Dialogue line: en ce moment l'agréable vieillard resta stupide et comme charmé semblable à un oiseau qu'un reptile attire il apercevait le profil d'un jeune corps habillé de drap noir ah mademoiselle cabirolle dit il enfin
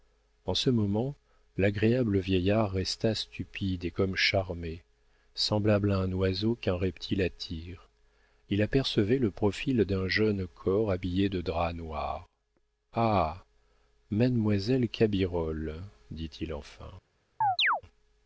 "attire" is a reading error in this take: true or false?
false